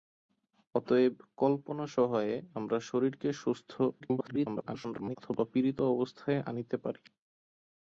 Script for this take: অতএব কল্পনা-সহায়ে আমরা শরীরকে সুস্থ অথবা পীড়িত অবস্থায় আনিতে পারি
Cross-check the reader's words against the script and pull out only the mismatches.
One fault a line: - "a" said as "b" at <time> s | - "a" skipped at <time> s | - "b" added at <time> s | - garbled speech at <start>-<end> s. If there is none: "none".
- garbled speech at 4.0-5.2 s